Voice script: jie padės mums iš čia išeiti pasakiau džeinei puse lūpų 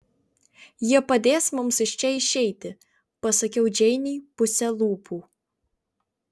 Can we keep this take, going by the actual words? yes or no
yes